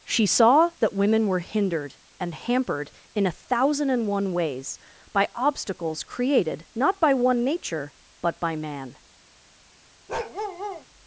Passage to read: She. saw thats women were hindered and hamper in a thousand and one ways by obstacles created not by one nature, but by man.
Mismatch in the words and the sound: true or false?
true